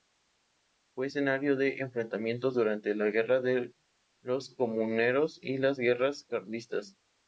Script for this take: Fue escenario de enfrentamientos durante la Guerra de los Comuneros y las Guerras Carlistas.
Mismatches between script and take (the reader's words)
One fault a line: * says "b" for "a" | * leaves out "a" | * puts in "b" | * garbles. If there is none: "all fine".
all fine